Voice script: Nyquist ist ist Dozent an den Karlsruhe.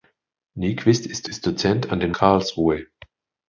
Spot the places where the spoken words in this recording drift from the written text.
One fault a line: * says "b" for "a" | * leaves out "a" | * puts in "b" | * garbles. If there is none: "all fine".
all fine